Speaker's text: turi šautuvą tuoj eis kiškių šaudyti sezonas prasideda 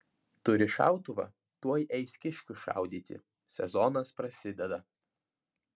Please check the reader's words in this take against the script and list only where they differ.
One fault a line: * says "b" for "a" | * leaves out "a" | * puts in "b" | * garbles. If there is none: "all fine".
all fine